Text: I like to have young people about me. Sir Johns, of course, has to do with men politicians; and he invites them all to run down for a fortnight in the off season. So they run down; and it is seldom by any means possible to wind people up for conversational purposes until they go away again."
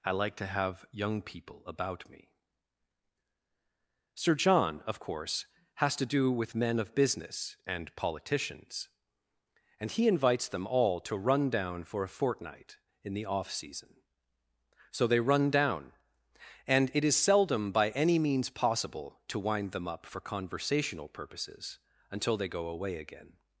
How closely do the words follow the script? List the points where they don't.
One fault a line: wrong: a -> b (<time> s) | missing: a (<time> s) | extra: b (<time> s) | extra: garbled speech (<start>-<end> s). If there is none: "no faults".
wrong: Johns -> John (4.3 s)
extra: of business and (6.8 s)
wrong: people -> them (19.7 s)